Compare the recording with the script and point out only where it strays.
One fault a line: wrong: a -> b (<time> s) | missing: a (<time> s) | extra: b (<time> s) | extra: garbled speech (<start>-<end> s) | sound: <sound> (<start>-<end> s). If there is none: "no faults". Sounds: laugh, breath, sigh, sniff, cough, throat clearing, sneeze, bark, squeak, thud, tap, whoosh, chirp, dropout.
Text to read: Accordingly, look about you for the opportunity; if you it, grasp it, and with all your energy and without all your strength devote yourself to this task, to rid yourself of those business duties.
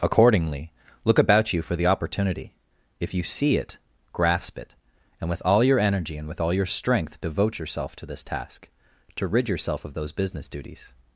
extra: see (3.2 s)
wrong: without -> with (6.3 s)